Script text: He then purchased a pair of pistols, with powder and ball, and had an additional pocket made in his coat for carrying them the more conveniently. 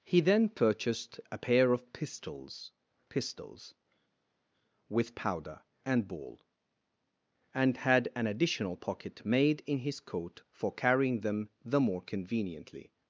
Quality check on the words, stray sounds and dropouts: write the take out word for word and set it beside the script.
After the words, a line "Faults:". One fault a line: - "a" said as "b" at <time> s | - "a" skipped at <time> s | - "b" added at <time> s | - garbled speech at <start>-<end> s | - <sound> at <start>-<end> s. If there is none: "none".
He then purchased a pair of pistols pistols, with powder and ball, and had an additional pocket made in his coat for carrying them the more conveniently.
Faults:
- "pistols" added at 3.1 s